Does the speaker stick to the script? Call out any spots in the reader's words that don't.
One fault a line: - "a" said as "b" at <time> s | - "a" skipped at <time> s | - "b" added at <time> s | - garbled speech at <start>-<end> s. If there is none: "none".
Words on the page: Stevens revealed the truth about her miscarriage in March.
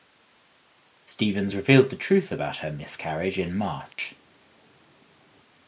none